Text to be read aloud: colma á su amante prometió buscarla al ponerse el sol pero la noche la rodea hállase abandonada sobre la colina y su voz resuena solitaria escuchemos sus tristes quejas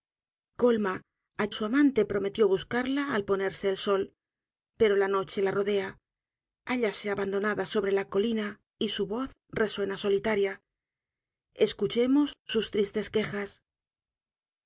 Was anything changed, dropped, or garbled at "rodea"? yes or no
no